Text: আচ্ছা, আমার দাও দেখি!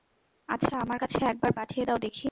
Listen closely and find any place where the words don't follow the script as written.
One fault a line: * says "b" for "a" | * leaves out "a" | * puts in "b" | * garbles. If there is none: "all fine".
* puts in "কাছে একবার পাঠিয়ে"